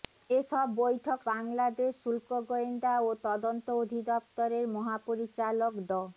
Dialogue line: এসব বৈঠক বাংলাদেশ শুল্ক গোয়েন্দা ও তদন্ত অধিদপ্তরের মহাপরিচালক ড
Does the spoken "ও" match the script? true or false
true